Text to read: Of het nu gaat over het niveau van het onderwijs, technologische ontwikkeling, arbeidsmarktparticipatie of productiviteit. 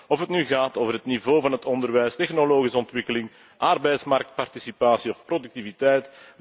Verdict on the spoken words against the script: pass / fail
pass